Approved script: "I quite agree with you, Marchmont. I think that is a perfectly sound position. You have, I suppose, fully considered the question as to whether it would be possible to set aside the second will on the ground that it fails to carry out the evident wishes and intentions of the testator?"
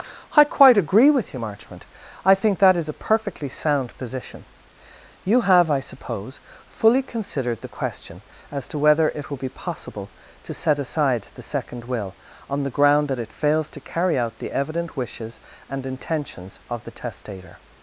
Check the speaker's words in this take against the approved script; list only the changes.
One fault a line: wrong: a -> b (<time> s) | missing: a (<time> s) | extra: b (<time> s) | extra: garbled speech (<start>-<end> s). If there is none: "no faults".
wrong: would -> will (9.3 s)